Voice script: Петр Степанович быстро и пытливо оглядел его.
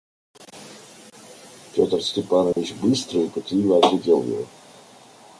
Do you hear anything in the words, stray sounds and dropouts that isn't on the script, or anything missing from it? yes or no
yes